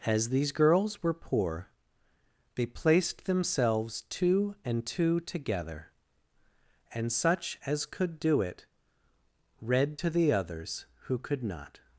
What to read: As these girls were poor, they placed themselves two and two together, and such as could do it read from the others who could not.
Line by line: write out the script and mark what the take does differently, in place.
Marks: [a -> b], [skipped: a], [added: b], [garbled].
As these girls were poor, they placed themselves two and two together, and such as could do it read [from -> to] the others who could not.